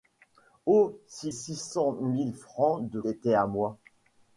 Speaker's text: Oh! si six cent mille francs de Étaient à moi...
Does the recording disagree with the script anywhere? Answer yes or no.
no